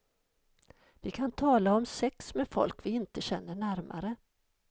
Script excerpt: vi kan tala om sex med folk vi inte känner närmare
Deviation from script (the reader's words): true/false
false